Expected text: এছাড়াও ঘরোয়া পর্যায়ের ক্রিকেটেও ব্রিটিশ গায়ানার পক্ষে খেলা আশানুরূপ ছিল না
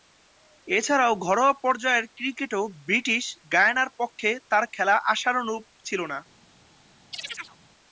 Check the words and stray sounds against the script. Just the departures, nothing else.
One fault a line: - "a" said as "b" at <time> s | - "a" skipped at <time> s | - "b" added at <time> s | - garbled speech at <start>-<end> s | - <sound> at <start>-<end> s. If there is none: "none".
- "তার" added at 4.5 s
- chirp at 7.1-7.6 s